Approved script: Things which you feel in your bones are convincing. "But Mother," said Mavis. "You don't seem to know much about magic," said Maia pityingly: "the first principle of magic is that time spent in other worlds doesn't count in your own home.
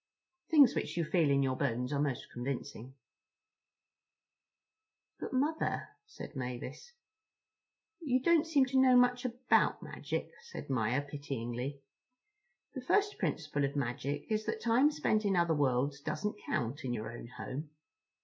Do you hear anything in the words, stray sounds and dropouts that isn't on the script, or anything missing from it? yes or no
yes